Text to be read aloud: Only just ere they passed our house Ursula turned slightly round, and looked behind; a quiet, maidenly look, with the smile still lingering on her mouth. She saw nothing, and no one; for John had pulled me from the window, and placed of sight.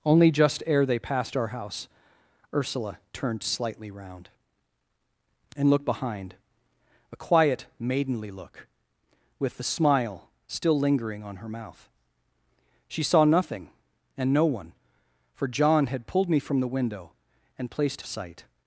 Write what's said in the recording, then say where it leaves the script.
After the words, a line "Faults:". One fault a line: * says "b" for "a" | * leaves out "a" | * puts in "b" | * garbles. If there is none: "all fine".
Only just ere they passed our house Ursula turned slightly round, and looked behind; a quiet, maidenly look, with the smile still lingering on her mouth. She saw nothing, and no one; for John had pulled me from the window, and placed of sight.
Faults:
all fine